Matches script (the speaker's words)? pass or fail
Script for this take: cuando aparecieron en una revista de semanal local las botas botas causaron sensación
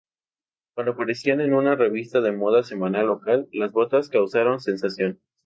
fail